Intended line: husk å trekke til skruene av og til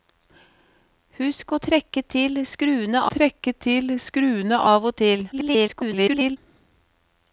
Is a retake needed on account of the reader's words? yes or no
yes